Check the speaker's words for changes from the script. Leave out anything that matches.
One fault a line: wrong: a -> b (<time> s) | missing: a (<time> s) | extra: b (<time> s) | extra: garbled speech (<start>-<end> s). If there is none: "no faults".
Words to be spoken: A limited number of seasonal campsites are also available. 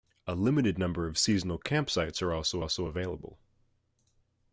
extra: also (2.6 s)